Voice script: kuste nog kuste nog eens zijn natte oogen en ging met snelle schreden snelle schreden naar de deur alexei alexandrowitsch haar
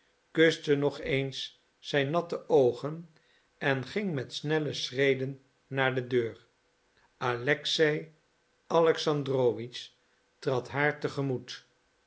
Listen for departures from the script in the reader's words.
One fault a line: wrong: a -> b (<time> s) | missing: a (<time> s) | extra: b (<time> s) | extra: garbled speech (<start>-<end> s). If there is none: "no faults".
missing: kuste nog (1.0 s)
missing: snelle schreden (5.4 s)
extra: trad (10.4 s)